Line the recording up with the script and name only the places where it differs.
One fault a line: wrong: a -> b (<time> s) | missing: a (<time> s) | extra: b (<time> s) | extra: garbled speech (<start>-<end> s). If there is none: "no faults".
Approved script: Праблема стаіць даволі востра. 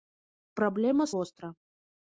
missing: стаіць даволі (1.1 s)